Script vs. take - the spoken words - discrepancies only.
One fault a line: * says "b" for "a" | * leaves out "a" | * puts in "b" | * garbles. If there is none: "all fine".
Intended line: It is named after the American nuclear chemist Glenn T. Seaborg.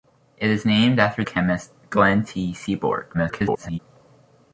* leaves out "the American nuclear"
* garbles